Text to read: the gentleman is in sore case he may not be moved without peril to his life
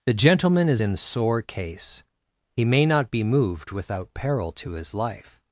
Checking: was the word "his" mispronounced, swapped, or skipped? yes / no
no